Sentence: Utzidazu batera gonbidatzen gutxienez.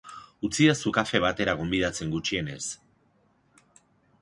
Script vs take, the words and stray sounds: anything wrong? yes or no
yes